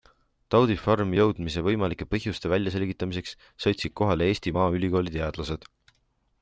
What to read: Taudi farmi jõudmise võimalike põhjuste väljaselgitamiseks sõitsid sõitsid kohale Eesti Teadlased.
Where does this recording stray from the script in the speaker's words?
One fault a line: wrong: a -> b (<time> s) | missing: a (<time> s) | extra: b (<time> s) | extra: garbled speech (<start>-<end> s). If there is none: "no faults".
missing: sõitsid (4.0 s)
extra: Maaülikooli (4.6 s)